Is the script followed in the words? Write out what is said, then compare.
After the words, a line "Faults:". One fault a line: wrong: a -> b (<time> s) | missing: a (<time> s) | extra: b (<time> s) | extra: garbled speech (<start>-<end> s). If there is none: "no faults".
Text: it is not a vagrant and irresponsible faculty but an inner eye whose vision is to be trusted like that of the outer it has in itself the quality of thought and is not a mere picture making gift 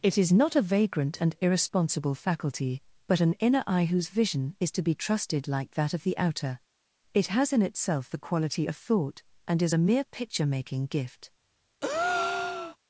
it is not a vagrant and irresponsible faculty but an inner eye whose vision is to be trusted like that of the outer it has in itself the quality of thought and is a mere picture making gift
Faults:
missing: not (9.7 s)